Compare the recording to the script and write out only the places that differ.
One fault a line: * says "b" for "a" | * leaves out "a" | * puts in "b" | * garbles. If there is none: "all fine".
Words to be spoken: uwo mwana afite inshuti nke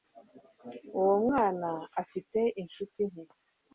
all fine